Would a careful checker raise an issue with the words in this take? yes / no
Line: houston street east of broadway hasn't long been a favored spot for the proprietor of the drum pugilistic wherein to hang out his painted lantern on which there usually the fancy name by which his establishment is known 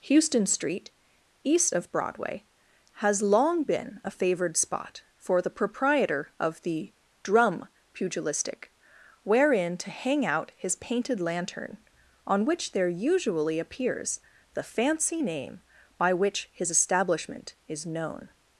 yes